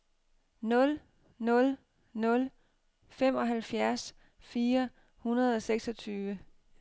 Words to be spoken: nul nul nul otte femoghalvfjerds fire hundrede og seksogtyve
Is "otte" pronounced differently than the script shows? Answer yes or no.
yes